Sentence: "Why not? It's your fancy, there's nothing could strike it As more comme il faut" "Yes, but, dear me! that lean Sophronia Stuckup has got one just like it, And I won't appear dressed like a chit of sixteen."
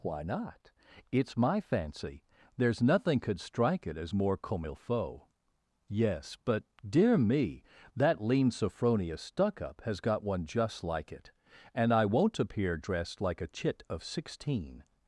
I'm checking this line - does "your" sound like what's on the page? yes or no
no